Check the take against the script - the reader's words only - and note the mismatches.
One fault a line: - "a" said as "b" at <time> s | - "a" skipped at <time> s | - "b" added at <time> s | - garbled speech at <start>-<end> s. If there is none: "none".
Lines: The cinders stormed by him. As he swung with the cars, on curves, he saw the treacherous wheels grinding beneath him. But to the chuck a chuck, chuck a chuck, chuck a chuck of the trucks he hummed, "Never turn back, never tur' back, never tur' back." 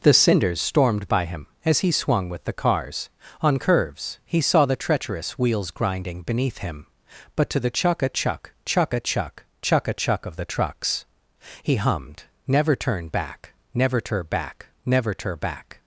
none